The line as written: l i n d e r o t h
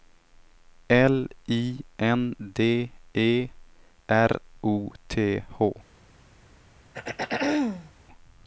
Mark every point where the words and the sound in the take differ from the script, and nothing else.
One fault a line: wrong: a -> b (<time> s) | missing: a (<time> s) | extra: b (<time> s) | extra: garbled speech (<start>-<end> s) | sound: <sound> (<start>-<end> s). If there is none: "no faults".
sound: throat clearing (6.9-7.9 s)